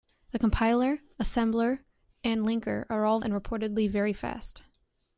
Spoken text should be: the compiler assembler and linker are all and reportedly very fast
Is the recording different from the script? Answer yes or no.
no